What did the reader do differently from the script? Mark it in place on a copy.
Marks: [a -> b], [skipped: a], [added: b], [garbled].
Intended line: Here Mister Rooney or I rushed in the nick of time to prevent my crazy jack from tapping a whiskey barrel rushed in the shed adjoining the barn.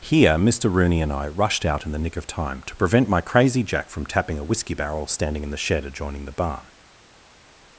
Here Mister Rooney [or -> and] I rushed [added: out] in the nick of time to prevent my crazy jack from tapping a whiskey barrel [rushed -> standing] in the shed adjoining the barn.